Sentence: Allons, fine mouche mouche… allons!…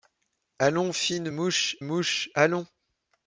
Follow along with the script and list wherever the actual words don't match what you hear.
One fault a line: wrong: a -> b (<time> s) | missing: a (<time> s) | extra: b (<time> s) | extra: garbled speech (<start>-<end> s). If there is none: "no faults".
no faults